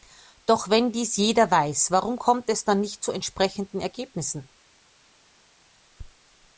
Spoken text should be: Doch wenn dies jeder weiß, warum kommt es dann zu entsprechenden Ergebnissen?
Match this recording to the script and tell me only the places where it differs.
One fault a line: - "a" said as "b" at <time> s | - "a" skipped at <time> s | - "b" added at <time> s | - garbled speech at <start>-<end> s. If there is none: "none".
- "nicht" added at 2.8 s